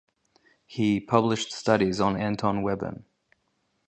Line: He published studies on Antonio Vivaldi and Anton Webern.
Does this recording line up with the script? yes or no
no